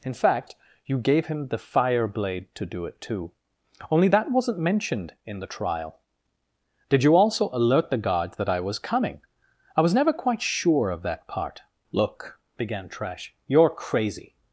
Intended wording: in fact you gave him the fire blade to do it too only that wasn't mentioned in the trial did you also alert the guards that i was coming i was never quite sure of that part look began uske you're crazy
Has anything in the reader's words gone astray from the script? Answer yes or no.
yes